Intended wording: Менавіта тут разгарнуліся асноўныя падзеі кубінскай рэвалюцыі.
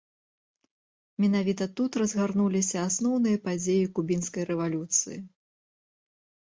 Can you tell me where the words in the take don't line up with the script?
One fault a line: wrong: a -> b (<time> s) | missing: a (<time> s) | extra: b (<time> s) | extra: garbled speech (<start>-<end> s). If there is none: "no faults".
no faults